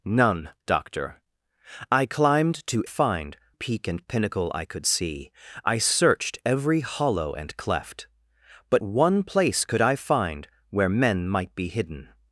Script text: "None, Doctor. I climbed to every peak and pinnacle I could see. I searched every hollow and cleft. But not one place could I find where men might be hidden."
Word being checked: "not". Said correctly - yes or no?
no